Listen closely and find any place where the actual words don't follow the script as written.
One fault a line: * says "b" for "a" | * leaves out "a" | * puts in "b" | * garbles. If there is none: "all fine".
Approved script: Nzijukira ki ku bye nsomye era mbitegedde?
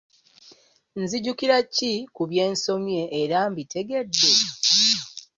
all fine